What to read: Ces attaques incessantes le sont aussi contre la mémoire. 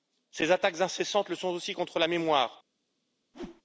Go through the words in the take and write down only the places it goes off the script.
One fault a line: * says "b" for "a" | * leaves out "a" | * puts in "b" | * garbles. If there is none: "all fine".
all fine